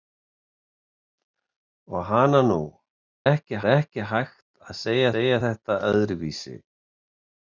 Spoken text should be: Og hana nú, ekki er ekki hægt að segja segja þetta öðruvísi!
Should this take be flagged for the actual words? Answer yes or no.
no